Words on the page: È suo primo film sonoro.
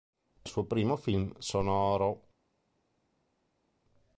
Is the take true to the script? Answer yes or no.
yes